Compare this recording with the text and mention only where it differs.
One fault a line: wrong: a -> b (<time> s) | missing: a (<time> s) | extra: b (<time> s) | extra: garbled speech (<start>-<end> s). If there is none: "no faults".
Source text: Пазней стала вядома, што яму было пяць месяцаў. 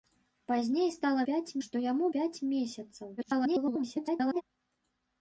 wrong: вядома -> пяць (1.3 s)
missing: было (2.1 s)
extra: garbled speech (3.2-4.4 s)